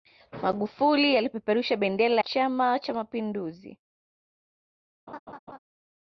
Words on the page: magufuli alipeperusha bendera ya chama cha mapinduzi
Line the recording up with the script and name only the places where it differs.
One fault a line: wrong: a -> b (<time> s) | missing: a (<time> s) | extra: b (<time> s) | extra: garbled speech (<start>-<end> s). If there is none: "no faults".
missing: ya (2.2 s)